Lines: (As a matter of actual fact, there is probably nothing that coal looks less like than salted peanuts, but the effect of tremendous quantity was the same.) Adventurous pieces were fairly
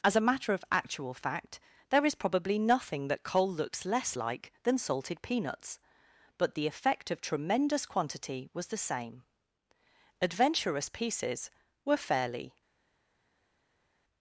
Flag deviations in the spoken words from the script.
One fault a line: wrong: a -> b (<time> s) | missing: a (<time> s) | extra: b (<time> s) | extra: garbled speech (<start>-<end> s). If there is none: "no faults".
no faults